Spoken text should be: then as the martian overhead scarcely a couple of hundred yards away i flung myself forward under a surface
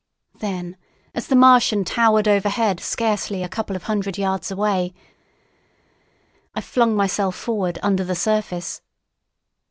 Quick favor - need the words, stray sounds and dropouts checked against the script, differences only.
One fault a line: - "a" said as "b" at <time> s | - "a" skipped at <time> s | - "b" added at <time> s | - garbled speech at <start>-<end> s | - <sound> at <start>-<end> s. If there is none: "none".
- "towered" added at 1.9 s
- "a" said as "the" at 8.0 s